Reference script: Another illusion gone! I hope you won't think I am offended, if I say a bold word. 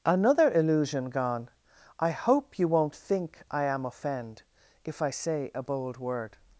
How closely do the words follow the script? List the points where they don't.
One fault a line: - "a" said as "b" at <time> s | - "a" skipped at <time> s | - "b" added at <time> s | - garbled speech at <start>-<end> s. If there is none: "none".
- "offended" said as "offend" at 3.8 s